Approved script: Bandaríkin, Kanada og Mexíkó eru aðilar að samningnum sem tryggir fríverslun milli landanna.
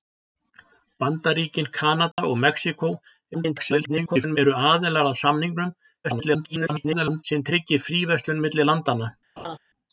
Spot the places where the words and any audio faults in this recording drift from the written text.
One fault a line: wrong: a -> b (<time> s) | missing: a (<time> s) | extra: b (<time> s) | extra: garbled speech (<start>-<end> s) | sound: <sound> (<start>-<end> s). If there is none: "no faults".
sound: dropout (2.1-2.2 s)
extra: garbled speech (3.3-4.4 s)
extra: garbled speech (6.0-7.2 s)
sound: laugh (9.4-9.6 s)